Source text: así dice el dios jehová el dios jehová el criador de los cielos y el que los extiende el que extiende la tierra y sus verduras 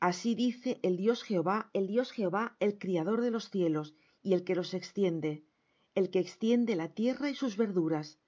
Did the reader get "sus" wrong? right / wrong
right